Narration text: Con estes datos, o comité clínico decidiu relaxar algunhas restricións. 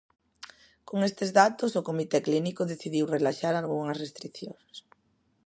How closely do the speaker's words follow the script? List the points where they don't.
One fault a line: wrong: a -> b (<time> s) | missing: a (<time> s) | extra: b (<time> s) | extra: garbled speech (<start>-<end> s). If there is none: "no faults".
no faults